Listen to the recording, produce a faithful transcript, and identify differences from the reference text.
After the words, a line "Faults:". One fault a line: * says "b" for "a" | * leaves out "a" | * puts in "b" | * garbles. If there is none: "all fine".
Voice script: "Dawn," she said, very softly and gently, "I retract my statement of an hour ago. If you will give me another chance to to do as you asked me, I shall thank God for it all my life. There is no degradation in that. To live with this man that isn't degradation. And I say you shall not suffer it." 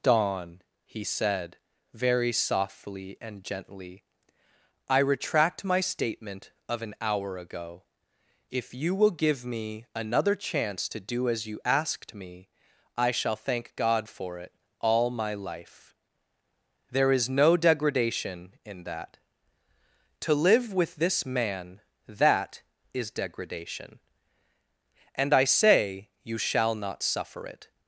"Dawn," he said, very softly and gently, "I retract my statement of an hour ago. If you will give me another chance to do as you asked me, I shall thank God for it all my life. There is no degradation in that. To live with this man that is degradation. And I say you shall not suffer it."
Faults:
* says "he" for "she"
* leaves out "to"
* says "is" for "isn't"